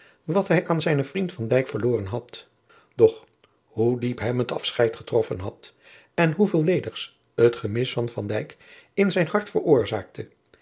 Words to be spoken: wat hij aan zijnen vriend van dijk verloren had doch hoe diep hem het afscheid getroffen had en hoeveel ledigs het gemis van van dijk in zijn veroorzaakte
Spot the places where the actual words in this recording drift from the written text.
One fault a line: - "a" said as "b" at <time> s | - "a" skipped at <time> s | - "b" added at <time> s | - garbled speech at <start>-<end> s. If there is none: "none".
- "hart" added at 9.3 s